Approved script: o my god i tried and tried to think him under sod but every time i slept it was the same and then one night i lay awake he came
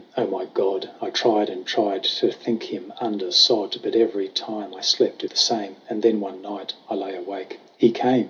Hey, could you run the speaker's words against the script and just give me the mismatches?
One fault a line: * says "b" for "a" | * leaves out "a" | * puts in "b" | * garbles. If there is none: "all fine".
* leaves out "it was"